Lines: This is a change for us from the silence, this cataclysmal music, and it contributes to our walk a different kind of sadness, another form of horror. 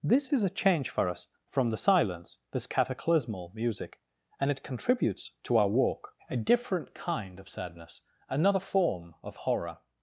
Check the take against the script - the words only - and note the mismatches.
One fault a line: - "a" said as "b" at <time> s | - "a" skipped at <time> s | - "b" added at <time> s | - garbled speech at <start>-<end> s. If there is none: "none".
none